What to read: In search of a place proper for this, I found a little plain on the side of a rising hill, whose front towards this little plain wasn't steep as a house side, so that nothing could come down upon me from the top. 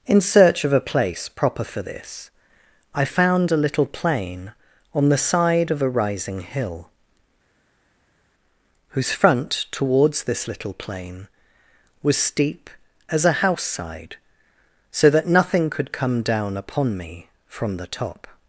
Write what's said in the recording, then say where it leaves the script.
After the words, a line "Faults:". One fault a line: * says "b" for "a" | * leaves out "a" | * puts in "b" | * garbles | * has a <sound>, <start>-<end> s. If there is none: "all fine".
In search of a place proper for this, I found a little plain on the side of a rising hill, whose front towards this little plain was steep as a house side, so that nothing could come down upon me from the top.
Faults:
* says "was" for "wasn't"